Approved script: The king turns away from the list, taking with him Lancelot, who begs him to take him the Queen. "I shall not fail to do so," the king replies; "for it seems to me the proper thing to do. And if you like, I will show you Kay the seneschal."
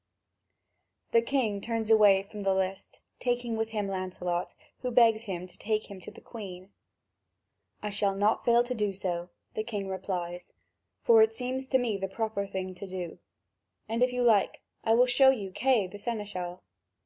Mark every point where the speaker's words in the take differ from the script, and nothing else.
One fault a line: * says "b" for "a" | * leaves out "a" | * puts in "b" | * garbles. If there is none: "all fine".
* puts in "to"